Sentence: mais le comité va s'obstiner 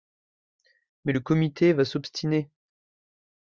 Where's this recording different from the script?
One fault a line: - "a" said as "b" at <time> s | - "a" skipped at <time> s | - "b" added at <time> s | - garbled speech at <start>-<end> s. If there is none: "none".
none